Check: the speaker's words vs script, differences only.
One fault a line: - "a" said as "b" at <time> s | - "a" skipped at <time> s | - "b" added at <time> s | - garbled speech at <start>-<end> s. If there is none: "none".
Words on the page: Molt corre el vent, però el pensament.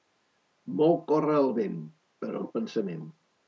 none